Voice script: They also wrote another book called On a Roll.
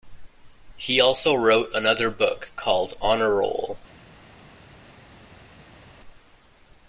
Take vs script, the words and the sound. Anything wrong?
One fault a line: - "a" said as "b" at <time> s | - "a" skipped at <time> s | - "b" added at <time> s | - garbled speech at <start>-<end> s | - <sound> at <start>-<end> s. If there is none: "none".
- "They" said as "He" at 0.8 s